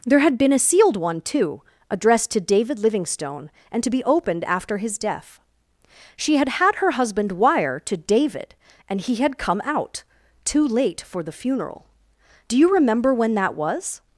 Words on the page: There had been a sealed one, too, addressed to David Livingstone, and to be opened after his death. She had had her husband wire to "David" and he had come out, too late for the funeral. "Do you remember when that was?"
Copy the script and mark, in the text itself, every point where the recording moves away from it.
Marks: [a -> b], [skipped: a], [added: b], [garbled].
There had been a sealed one, too, addressed to David Livingstone, and to be opened after his death. She had had her husband wire to "David" and he had come out, too late for the funeral. "Do you remember when that was?"